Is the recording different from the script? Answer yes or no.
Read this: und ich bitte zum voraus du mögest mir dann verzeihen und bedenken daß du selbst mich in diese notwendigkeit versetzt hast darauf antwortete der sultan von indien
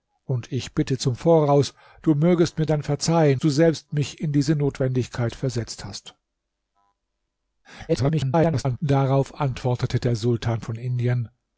yes